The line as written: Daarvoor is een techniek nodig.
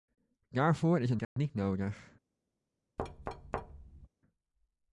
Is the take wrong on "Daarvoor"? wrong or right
right